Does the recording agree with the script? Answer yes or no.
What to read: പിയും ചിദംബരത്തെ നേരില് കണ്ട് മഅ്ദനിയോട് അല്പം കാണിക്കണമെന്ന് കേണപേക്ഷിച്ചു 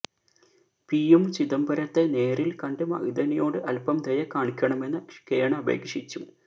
no